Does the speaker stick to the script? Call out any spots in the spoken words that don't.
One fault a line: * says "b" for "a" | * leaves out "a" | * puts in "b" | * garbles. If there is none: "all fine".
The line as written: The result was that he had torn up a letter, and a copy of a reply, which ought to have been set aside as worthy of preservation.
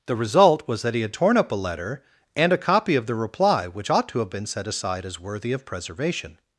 * says "the" for "a"